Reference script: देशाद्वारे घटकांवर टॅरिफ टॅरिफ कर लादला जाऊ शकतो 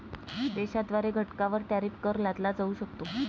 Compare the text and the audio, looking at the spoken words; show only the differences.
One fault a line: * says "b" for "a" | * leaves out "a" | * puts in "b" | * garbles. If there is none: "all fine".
* leaves out "टॅरिफ"